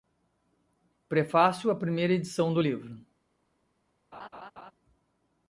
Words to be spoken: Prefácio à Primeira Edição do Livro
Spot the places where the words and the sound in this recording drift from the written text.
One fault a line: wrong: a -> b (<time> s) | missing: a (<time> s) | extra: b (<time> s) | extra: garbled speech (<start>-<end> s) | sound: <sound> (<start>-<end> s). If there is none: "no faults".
sound: laugh (4.1-4.7 s)